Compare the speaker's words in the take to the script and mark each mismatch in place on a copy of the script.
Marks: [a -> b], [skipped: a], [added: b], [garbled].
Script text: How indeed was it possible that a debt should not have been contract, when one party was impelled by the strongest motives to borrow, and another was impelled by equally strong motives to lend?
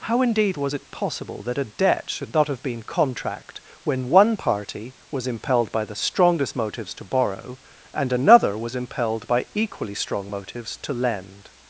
How indeed was it possible that a debt should not have been contract, when one party was impelled by the strongest motives to borrow, and another was impelled by equally strong motives to lend?